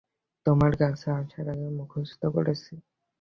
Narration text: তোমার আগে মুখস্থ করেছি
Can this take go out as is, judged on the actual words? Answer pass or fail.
fail